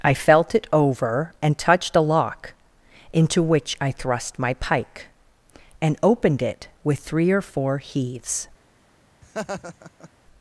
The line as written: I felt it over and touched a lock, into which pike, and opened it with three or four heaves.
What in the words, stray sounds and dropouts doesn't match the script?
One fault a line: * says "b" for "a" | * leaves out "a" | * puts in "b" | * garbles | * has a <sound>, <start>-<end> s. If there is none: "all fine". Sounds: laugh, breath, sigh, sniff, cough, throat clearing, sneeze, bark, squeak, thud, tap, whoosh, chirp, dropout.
* puts in "I thrust my"
* has a laugh, 9.2-10.1 s